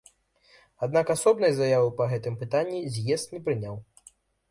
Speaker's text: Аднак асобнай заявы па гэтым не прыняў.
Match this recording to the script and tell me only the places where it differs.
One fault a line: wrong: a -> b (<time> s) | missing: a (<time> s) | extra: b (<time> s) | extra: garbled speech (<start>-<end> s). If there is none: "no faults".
extra: пытанні з'езд (2.4 s)